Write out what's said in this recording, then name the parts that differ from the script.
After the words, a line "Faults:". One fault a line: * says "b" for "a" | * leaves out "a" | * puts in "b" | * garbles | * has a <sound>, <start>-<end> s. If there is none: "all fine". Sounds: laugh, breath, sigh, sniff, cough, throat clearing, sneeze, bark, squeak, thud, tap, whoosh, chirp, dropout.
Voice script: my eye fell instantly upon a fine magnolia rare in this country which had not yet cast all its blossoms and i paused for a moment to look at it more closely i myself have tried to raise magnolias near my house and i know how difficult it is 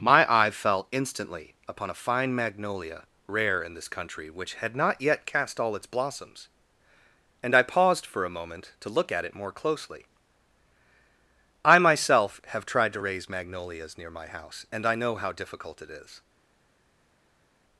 my eye fell instantly upon a fine magnolia rare in this country which had not yet cast all its blossoms and i paused for a moment to look at it more closely i myself have tried to raise magnolias near my house and i know how difficult it is
Faults:
all fine